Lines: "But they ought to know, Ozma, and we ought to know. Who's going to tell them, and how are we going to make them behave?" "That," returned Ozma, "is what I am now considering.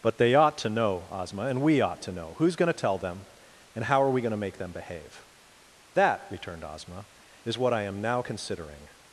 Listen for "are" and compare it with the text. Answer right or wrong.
right